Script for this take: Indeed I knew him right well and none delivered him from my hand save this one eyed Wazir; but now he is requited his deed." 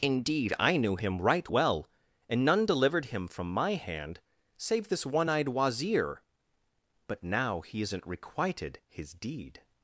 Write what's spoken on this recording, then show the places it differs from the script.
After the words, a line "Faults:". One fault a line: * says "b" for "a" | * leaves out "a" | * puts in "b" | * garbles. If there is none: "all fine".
Indeed I knew him right well and none delivered him from my hand save this one eyed Wazir; but now he isn't requited his deed."
Faults:
* says "isn't" for "is"